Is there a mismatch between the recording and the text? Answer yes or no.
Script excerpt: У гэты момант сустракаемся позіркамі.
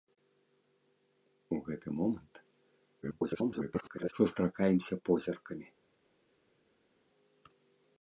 yes